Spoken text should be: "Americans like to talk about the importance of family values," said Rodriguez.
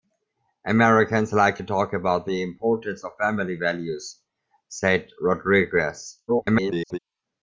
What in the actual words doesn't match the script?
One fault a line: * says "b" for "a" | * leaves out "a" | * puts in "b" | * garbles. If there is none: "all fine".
* garbles